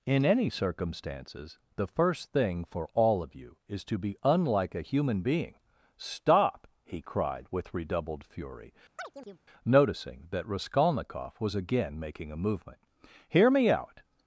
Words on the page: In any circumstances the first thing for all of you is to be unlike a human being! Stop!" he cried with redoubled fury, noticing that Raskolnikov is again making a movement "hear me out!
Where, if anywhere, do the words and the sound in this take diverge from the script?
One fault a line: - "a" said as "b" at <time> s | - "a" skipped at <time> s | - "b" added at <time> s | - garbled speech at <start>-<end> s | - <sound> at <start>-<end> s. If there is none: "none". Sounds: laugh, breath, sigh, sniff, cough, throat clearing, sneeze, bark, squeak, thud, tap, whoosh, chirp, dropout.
- chirp at 9.0-9.4 s
- "is" said as "was" at 11.4 s